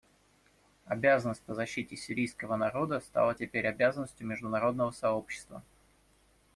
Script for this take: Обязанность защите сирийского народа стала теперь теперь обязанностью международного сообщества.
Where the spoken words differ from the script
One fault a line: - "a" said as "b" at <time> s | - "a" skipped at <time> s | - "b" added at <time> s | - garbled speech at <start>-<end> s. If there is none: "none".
- "по" added at 1.4 s
- "теперь" skipped at 3.7 s